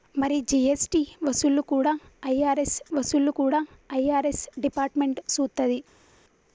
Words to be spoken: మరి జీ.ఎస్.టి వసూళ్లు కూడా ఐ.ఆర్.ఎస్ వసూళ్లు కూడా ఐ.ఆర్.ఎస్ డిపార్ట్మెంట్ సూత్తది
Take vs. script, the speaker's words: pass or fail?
pass